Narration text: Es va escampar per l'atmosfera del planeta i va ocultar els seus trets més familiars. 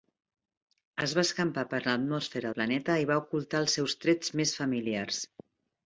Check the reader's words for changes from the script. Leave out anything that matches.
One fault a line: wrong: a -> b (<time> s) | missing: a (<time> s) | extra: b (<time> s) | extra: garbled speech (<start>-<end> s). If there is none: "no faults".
missing: del (2.5 s)